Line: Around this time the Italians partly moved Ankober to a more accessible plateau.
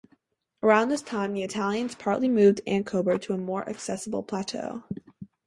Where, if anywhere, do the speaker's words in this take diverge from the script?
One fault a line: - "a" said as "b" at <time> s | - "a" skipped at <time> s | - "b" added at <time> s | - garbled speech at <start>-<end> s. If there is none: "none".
none